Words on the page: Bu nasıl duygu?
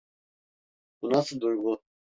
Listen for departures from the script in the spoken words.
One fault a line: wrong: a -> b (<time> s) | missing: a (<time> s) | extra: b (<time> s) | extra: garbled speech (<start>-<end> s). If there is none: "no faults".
no faults